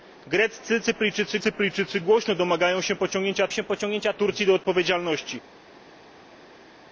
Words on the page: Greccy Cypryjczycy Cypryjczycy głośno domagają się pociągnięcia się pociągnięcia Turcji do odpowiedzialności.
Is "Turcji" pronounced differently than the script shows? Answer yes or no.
no